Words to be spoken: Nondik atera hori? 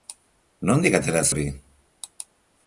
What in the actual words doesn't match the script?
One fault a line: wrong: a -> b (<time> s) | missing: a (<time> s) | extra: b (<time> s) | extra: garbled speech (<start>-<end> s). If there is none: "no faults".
no faults